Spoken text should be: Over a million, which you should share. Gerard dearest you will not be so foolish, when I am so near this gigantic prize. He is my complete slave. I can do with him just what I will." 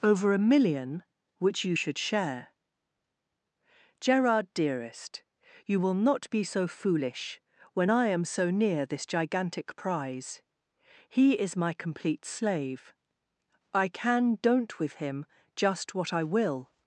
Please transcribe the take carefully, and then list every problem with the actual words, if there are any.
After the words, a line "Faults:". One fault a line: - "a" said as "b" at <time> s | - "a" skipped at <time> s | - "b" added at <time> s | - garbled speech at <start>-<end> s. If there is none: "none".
Over a million, which you should share. Gerard dearest you will not be so foolish, when I am so near this gigantic prize. He is my complete slave. I can don't with him just what I will."
Faults:
- "do" said as "don't" at 14.4 s